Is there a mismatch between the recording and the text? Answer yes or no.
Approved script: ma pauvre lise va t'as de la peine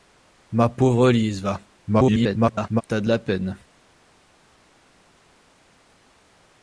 yes